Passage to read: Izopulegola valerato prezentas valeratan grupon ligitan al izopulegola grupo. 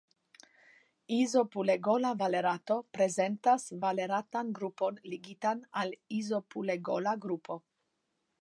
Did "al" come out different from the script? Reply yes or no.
no